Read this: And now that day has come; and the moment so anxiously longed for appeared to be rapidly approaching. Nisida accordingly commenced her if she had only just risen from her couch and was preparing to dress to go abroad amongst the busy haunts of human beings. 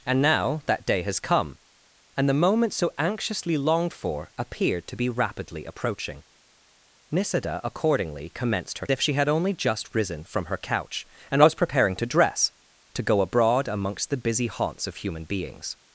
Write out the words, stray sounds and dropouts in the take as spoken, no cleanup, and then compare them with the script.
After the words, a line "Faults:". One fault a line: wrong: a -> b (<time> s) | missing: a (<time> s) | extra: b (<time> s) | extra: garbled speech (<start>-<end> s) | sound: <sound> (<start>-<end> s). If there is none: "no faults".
And now that day has come; and the moment so anxiously longed for appeared to be rapidly approaching. Nisida accordingly commenced her if she had only just risen from her couch and was preparing to dress to go abroad amongst the busy haunts of human beings.
Faults:
no faults